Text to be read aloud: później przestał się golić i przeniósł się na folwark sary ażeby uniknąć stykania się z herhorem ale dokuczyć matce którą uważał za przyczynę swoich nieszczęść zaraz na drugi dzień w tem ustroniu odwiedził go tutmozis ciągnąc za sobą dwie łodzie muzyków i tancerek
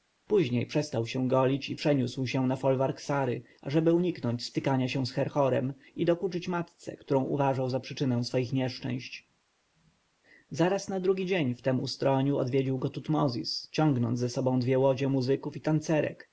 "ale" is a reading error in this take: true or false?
true